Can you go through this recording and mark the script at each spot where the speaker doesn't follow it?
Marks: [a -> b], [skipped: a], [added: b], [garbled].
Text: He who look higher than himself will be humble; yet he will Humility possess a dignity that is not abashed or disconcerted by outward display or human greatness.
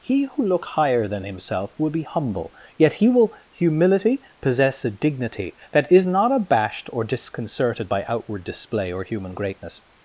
He who look higher than himself will be humble; yet he will Humility possess a dignity that is not abashed or disconcerted by outward display or human greatness.